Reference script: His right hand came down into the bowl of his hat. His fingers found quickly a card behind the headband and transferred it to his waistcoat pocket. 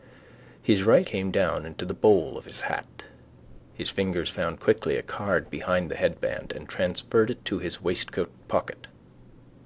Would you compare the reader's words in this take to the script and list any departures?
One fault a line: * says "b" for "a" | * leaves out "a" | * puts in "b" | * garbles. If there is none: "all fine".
* leaves out "hand"